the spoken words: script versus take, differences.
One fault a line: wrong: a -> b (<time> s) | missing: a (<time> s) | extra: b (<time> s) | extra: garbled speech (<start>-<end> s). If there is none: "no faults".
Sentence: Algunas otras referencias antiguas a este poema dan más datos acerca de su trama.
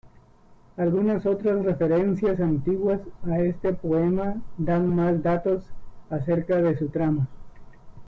no faults